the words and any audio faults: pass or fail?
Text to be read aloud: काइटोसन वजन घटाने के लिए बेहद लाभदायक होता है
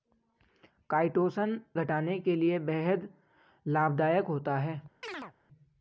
fail